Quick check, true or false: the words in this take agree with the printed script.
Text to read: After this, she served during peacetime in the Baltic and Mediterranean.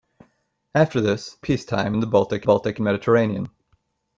false